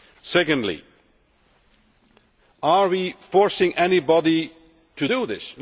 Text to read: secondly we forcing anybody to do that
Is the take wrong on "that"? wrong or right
wrong